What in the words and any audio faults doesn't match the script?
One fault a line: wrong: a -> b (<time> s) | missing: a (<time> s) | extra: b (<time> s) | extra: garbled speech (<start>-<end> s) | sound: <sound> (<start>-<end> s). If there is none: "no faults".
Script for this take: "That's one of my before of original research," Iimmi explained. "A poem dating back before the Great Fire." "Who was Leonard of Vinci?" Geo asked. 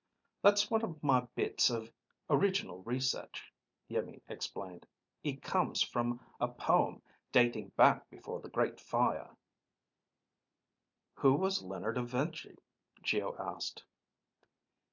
wrong: before -> bits (1.4 s)
extra: It comes from (5.2 s)